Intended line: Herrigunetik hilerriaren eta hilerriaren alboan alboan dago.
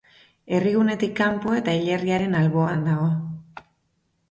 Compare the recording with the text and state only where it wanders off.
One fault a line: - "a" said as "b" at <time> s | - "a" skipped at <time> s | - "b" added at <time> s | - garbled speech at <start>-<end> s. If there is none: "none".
- "hilerriaren" said as "kanpo" at 1.2 s
- "alboan" skipped at 2.9 s